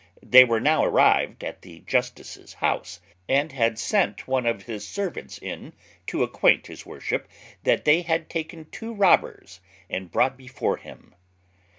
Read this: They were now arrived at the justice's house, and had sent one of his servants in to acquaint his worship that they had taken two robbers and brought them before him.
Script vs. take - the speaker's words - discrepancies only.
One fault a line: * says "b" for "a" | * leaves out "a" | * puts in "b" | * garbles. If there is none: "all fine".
* leaves out "them"